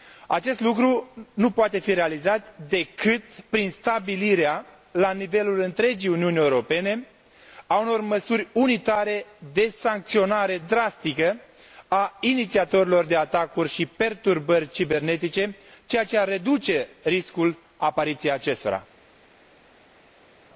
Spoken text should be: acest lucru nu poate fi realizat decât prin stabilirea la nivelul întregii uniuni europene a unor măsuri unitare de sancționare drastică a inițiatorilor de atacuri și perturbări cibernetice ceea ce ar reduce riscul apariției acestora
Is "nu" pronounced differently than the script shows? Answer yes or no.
no